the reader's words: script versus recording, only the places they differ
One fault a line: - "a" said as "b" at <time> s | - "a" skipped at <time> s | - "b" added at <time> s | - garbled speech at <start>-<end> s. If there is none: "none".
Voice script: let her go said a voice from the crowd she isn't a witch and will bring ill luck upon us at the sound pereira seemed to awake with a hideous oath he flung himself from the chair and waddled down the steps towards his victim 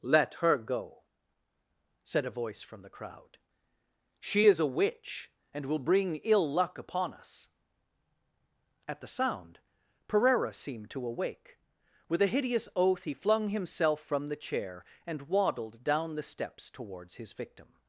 - "isn't" said as "is" at 4.5 s